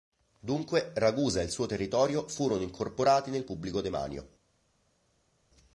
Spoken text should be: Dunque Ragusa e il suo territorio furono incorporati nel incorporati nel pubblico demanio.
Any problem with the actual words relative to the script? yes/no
yes